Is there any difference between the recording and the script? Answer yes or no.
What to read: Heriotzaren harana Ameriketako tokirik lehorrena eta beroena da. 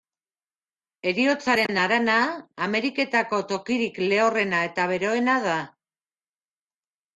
no